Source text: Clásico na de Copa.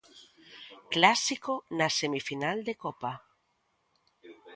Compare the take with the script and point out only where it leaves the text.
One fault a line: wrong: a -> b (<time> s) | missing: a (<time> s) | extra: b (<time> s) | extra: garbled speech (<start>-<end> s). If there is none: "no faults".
extra: semifinal (2.0 s)